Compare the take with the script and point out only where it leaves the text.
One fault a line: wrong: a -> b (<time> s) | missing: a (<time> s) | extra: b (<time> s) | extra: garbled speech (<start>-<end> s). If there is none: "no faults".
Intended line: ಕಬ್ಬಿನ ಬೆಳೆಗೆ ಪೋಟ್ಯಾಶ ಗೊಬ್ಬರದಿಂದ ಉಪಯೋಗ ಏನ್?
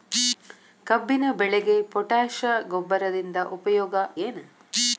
no faults